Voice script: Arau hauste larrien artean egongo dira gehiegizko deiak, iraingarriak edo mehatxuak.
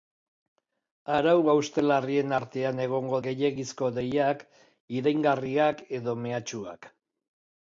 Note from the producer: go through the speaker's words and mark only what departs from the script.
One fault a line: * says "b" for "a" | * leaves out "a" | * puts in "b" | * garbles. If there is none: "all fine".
* leaves out "dira"